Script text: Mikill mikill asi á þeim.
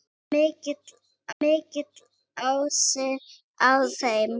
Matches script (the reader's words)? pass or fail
pass